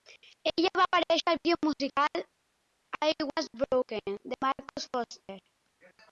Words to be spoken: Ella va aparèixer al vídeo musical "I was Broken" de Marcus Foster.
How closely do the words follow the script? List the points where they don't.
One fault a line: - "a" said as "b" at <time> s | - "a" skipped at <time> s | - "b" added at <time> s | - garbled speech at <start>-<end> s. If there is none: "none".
none